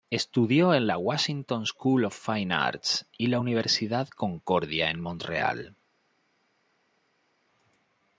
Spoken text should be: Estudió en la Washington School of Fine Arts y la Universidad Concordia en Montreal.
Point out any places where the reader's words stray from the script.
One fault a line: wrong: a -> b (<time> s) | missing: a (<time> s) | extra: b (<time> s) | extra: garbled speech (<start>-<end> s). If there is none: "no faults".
no faults